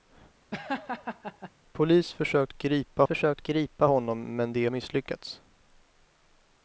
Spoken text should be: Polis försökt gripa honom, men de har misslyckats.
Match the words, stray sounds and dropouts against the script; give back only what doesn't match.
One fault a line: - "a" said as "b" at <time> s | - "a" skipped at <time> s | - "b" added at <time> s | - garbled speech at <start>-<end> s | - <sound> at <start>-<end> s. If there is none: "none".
- laugh at 0.5-1.5 s
- "försökt gripa" added at 3.0 s
- "har" skipped at 4.7 s